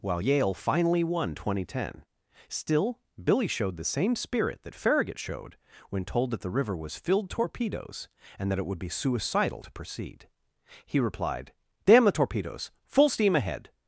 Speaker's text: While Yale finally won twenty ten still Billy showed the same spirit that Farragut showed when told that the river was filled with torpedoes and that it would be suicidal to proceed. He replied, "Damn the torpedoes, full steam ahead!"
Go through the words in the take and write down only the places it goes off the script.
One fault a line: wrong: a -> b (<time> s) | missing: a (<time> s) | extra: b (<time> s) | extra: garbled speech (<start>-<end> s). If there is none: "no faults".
missing: with (7.3 s)